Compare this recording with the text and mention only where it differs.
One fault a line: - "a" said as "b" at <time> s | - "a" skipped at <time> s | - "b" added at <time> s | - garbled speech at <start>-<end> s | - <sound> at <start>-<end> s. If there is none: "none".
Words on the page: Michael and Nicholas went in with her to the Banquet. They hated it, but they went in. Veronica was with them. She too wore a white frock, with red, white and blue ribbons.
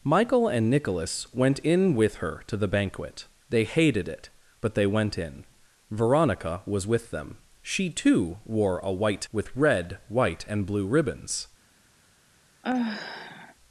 - "frock" skipped at 9.2 s
- sigh at 12.6-13.5 s